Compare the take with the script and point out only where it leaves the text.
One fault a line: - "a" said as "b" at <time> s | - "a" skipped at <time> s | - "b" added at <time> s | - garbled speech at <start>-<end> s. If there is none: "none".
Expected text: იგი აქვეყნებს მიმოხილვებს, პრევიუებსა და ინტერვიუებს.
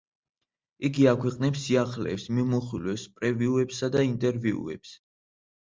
- "სიახლეებს" added at 1.6 s